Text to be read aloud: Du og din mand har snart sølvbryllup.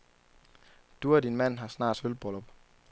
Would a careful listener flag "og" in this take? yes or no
no